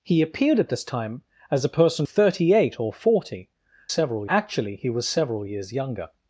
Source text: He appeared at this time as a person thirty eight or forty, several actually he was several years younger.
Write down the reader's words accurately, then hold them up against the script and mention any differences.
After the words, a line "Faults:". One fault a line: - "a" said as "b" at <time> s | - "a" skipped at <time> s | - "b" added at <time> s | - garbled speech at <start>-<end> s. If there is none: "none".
He appeared at this time as a person thirty eight or forty, several actually he was several years younger.
Faults:
none